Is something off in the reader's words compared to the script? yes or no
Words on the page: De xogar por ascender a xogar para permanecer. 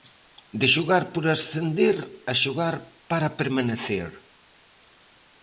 no